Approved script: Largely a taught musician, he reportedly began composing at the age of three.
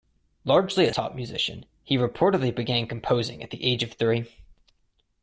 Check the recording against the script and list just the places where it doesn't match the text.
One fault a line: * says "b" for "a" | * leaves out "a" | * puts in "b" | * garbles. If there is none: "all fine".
all fine